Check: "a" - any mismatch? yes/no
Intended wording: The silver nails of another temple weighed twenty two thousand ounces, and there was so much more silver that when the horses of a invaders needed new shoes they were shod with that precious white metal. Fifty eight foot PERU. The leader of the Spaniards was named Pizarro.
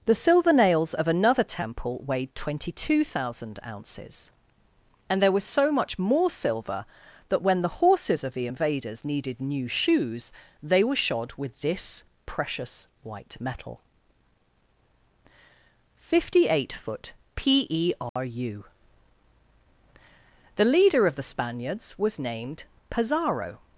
yes